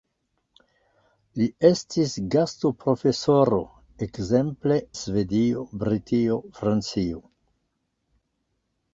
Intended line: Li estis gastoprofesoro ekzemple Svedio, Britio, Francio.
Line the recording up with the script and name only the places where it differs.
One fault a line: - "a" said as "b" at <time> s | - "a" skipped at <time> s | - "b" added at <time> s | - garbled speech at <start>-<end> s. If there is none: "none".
none